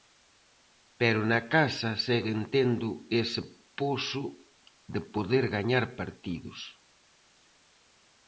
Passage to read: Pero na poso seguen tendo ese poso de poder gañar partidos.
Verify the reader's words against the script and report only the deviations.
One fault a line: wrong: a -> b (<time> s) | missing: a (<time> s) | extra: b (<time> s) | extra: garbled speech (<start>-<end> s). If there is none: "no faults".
wrong: poso -> casa (1.6 s)